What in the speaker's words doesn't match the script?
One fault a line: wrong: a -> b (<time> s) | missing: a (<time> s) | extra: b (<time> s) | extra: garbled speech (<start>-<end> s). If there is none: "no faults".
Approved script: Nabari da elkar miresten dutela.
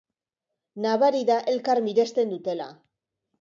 no faults